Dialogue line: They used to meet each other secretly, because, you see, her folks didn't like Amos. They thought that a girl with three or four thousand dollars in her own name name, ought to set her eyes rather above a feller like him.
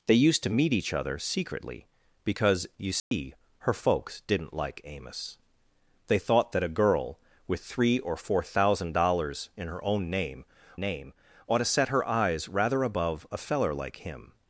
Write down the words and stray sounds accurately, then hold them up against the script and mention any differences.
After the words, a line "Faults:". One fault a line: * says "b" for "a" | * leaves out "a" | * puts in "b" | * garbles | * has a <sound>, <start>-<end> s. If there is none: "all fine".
They used to meet each other secretly, because, you see, her folks didn't like Amos. They thought that a girl with three or four thousand dollars in her own name name, ought to set her eyes rather above a feller like him.
Faults:
* has a dropout, 3.0-3.1 s